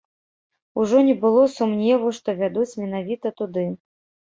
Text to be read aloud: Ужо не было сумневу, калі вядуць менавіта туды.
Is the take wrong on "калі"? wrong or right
wrong